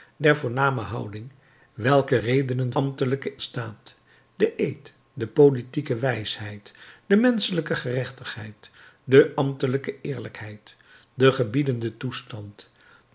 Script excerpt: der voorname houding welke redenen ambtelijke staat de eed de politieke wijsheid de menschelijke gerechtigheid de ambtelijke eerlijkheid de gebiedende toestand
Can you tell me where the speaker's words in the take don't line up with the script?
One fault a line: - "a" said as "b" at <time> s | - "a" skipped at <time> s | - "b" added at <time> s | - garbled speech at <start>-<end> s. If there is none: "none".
none